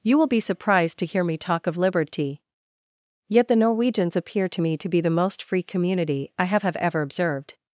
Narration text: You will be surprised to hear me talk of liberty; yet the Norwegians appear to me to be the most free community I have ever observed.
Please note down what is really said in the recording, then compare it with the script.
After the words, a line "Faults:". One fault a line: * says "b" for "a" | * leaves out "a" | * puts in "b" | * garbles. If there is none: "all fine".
You will be surprised to hear me talk of liberty; yet the Norwegians appear to me to be the most free community I have have ever observed.
Faults:
* puts in "have"